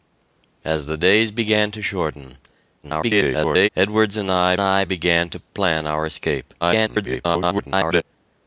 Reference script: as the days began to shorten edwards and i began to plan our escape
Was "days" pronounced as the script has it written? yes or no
yes